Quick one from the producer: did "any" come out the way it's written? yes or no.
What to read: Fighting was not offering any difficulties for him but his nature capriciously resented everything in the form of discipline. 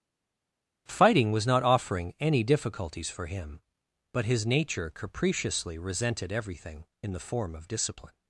yes